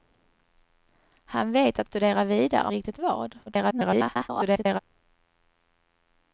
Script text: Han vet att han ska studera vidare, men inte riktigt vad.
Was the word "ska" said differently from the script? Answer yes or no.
yes